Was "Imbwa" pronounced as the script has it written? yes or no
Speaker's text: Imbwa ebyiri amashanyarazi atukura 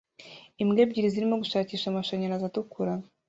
yes